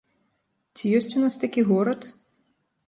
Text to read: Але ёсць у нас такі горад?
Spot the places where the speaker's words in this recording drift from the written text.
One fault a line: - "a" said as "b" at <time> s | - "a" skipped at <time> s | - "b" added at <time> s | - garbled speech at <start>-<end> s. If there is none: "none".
- "Але" said as "Ці" at 0.8 s